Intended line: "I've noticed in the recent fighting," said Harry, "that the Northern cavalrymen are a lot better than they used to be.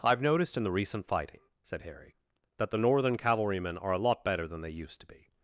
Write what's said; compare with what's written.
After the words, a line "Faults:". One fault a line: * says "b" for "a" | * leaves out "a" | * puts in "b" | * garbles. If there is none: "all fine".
"I've noticed in the recent fighting," said Harry, "that the Northern cavalrymen are a lot better than they used to be.
Faults:
all fine